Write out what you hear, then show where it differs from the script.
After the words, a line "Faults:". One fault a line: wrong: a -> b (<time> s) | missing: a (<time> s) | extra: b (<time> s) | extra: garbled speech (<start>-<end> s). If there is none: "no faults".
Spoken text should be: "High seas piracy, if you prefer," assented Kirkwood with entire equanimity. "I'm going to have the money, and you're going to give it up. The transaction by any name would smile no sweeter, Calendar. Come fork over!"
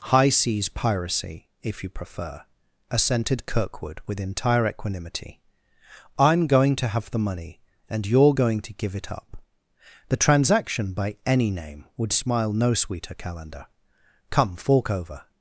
"High seas piracy, if you prefer," assented Kirkwood with entire equanimity. "I'm going to have the money, and you're going to give it up. The transaction by any name would smile no sweeter, Calendar. Come fork over!"
Faults:
no faults